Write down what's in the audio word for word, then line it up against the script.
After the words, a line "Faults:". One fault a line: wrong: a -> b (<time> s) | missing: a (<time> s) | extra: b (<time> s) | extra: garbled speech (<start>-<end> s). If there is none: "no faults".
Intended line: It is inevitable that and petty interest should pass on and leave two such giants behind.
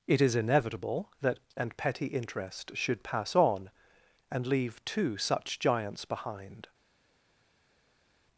It is inevitable that and petty interest should pass on and leave two such giants behind.
Faults:
no faults